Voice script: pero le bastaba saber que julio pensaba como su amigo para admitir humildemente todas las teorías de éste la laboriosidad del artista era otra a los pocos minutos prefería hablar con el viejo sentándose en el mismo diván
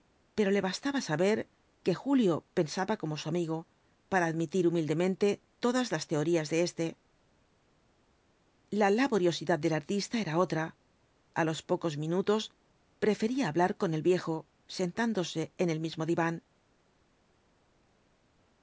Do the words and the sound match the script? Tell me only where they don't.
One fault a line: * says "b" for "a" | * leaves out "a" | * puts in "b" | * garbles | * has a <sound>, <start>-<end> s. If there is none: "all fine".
all fine